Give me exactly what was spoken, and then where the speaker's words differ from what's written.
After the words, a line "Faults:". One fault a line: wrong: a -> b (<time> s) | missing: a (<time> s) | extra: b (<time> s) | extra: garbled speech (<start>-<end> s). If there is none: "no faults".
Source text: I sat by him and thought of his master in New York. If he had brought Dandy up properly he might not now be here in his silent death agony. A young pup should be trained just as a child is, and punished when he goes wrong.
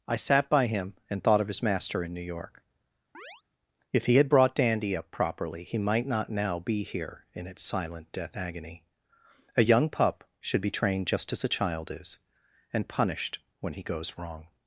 I sat by him and thought of his master in New York. If he had brought Dandy up properly he might not now be here in its silent death agony. A young pup should be trained just as a child is, and punished when he goes wrong.
Faults:
wrong: his -> its (7.5 s)